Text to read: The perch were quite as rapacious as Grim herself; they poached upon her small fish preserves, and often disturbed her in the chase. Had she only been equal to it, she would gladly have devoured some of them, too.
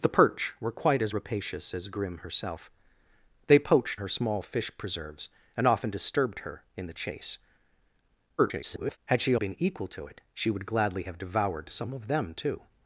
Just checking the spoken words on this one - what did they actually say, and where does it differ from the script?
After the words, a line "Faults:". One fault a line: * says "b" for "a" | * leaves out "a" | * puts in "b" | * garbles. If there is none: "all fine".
The perch were quite as rapacious as Grim herself; they poached her small fish preserves, and often disturbed her in the chase. [garbled] Had she been equal to it, she would gladly have devoured some of them, too.
Faults:
* leaves out "upon"
* garbles
* leaves out "only"